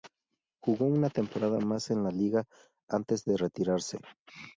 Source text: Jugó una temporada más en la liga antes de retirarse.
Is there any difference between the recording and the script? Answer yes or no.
no